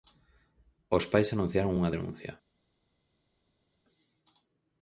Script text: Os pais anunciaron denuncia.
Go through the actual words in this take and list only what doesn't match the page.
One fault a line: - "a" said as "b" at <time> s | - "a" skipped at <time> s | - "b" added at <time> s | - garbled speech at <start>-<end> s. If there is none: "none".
- "unha" added at 1.8 s